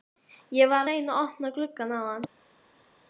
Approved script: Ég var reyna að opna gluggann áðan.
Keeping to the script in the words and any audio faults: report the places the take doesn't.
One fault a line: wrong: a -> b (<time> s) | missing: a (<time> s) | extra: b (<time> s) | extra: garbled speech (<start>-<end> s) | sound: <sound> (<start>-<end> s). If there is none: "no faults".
no faults